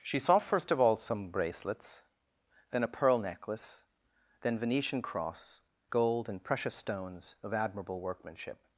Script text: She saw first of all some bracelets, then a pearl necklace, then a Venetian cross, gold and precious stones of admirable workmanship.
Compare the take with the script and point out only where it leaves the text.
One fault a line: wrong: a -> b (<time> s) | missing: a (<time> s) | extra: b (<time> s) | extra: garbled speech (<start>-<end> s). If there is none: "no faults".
missing: a (4.6 s)